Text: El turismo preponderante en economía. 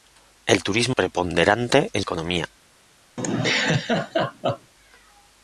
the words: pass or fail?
pass